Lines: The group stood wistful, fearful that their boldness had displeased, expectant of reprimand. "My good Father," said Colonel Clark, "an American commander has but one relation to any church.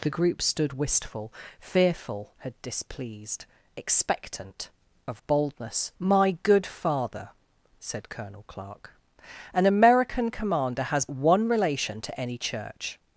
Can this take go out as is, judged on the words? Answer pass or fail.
fail